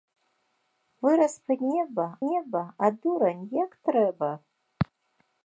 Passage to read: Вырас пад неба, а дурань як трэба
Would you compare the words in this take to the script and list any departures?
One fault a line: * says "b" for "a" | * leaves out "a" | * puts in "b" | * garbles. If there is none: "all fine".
* puts in "неба"